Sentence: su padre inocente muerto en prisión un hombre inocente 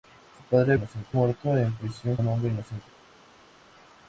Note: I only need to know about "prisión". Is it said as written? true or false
true